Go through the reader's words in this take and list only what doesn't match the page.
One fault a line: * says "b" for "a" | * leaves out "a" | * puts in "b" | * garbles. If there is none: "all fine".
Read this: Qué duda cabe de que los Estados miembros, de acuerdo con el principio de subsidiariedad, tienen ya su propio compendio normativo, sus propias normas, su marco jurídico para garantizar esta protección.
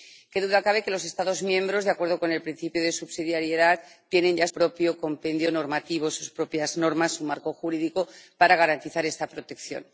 * leaves out "su"